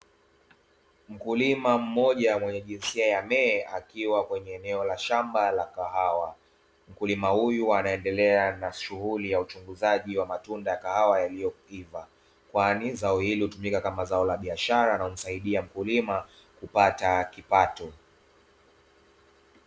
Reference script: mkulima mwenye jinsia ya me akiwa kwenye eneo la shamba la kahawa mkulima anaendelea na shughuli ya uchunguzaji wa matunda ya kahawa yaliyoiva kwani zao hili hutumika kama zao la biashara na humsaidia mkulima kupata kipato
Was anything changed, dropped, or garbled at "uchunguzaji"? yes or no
no